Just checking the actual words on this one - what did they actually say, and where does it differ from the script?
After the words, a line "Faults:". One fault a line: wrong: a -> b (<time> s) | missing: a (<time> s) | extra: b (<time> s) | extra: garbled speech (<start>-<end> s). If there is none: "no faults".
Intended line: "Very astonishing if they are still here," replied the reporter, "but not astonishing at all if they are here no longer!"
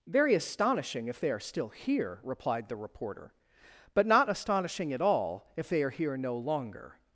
"Very astonishing if they are still here," replied the reporter, "but not astonishing at all if they are here no longer!"
Faults:
no faults